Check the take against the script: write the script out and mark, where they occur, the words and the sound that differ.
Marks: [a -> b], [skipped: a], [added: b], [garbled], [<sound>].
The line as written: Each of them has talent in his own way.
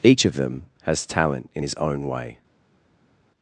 Each of them has talent in his own way.